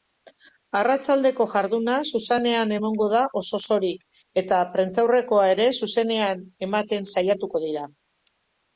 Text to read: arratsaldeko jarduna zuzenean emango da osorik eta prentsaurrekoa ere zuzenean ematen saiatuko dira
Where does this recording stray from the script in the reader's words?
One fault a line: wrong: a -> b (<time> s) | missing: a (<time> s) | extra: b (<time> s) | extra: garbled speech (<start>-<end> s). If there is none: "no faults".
extra: oso (3.4 s)